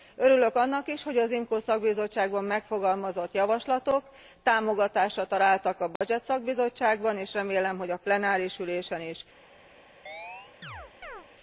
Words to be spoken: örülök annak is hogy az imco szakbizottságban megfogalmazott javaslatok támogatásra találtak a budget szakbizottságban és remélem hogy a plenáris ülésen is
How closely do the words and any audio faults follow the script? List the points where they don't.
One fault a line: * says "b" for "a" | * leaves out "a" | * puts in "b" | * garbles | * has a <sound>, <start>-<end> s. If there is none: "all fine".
* has a dropout, 6.0-6.0 s
* has a chirp, 10.1-11.3 s